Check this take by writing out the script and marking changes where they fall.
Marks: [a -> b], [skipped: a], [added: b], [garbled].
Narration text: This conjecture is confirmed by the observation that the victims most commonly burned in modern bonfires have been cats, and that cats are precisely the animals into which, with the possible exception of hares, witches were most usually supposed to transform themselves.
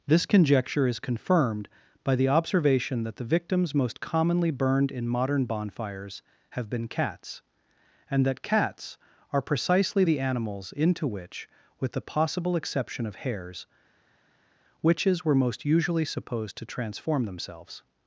This conjecture is confirmed by the observation that the victims most commonly burned in modern bonfires have been cats, and that cats are precisely the animals into which, with the possible exception of hares, witches were most usually supposed to transform themselves.